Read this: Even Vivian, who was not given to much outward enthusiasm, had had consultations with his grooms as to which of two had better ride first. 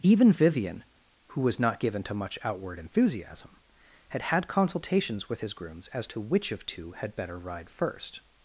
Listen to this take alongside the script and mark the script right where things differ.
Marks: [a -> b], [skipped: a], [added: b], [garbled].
Even Vivian, who was not given to much outward enthusiasm, had had consultations with his grooms as to which of two had better ride first.